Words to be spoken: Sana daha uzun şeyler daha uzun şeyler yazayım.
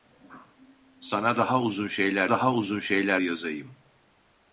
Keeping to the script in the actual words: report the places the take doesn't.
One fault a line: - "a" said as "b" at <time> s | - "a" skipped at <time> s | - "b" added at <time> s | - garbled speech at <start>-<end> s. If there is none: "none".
none